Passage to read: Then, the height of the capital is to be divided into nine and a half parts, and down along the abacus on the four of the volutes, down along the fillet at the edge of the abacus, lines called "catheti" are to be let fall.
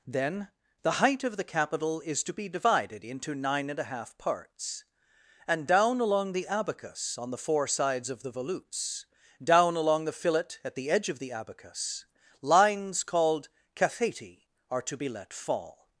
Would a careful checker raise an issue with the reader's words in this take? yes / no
yes